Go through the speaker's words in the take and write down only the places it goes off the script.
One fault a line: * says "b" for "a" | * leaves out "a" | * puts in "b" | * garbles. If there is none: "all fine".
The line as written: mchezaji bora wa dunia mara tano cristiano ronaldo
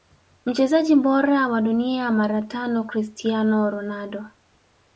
all fine